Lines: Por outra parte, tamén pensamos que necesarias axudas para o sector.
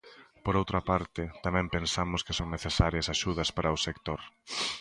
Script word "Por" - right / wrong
right